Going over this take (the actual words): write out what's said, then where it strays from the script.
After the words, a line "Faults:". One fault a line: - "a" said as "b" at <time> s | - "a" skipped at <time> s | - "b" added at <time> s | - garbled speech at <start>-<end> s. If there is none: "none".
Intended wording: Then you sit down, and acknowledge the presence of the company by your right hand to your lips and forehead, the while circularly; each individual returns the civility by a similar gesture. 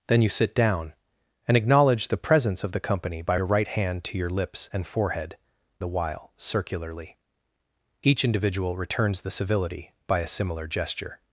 Then you sit down, and acknowledge the presence of the company by your right hand to your lips and forehead, the while circularly; each individual returns the civility by a similar gesture.
Faults:
none